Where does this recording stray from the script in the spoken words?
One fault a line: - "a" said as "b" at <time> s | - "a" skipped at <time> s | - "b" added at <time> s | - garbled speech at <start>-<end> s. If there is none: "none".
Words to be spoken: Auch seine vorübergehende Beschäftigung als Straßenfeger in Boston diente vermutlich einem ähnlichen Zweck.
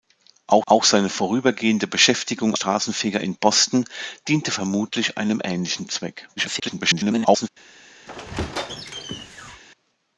- "auch" added at 0.7 s
- "als" skipped at 2.6 s
- garbled speech at 6.4-7.5 s